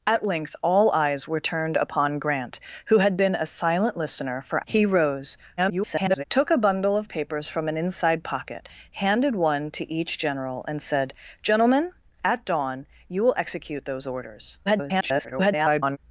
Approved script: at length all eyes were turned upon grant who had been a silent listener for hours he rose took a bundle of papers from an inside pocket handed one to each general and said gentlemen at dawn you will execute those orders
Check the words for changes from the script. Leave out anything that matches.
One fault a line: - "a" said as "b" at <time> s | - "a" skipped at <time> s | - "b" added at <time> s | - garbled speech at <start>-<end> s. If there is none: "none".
- "hours" skipped at 4.7 s
- garbled speech at 5.6-6.2 s
- garbled speech at 14.7-16.0 s